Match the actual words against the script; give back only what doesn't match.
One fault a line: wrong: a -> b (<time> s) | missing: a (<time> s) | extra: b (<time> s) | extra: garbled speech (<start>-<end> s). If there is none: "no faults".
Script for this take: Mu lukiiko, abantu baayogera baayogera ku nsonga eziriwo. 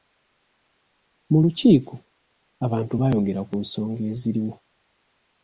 missing: baayogera (3.4 s)